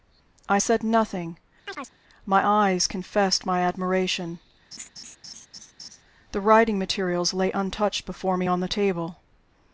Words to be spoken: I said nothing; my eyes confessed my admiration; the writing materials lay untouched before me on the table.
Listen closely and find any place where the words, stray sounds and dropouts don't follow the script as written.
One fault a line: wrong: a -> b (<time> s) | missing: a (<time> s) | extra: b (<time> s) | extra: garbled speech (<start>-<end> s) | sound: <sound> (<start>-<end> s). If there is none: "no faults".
sound: chirp (1.7-1.9 s)
sound: laugh (4.7-6.0 s)